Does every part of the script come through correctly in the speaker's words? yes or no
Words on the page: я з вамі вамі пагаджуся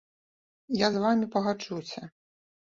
no